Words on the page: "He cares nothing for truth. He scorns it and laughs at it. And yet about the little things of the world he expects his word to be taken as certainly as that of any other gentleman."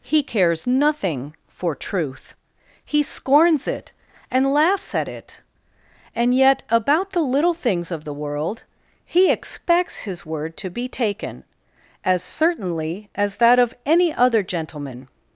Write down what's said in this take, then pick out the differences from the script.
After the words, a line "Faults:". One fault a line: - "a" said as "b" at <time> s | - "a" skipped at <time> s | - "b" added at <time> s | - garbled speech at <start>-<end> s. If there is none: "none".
"He cares nothing for truth. He scorns it and laughs at it. And yet about the little things of the world he expects his word to be taken as certainly as that of any other gentleman."
Faults:
none